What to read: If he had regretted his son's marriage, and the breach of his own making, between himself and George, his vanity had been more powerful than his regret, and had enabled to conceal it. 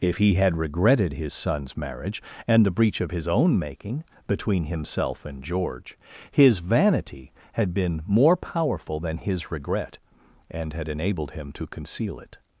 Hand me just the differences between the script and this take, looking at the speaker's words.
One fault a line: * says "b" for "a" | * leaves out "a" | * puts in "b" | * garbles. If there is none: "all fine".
* puts in "him"